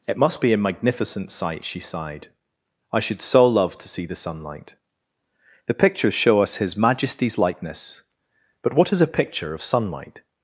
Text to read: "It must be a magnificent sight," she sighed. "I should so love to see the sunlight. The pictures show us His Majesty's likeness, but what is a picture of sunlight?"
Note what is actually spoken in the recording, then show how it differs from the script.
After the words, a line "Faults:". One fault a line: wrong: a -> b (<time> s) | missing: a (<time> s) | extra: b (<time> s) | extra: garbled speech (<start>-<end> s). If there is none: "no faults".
"It must be a magnificent sight," she sighed. "I should so love to see the sunlight. The pictures show us His Majesty's likeness, but what is a picture of sunlight?"
Faults:
no faults